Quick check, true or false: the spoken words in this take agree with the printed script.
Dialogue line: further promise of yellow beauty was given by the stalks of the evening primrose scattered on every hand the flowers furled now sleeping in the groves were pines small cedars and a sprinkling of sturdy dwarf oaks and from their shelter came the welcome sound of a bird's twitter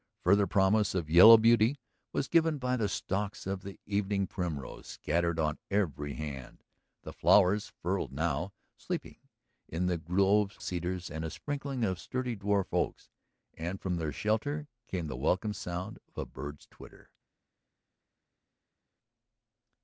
false